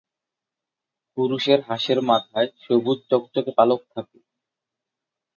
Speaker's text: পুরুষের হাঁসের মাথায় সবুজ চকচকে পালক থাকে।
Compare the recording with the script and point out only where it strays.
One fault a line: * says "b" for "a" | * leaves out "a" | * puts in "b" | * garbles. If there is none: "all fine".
all fine